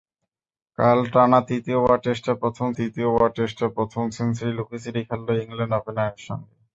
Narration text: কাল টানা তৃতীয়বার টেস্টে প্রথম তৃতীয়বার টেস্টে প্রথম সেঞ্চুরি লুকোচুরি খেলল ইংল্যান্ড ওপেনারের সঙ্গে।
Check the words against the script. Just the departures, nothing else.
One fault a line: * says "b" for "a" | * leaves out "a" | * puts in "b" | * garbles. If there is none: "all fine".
all fine